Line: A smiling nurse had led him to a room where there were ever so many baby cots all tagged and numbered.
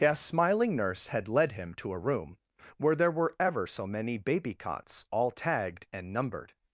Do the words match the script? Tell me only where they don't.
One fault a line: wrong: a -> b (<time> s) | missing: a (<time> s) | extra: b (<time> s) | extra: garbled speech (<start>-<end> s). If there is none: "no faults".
no faults